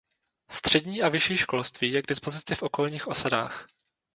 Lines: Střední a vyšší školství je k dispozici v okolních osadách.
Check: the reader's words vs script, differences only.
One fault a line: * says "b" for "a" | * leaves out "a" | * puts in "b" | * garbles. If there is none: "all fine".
all fine